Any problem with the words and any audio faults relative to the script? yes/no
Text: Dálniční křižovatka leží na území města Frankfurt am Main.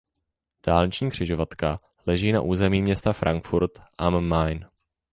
no